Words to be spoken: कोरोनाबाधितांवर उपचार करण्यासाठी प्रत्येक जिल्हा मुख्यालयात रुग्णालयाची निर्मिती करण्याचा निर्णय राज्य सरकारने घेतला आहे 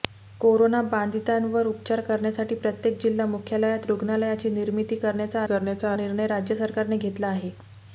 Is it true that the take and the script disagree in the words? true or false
true